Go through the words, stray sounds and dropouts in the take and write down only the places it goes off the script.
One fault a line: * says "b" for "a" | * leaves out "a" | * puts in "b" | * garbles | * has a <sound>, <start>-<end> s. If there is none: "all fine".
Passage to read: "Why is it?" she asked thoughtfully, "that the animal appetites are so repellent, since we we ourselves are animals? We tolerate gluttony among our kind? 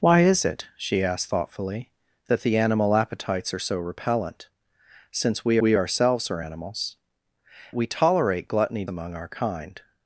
all fine